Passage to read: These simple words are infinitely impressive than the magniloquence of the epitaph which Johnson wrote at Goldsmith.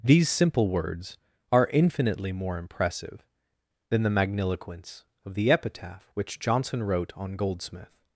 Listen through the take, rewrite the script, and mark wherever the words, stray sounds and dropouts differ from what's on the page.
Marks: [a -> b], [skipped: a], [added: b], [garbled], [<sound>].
These simple words are infinitely [added: more] impressive than the magniloquence of the epitaph which Johnson wrote [at -> on] Goldsmith.